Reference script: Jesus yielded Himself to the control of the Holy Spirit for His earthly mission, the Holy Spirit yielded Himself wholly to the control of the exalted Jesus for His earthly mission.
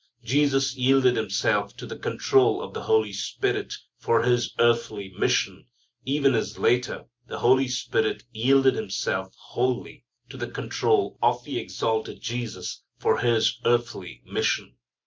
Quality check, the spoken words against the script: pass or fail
fail